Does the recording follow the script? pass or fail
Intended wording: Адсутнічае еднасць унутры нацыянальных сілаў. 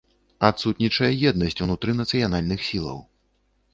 pass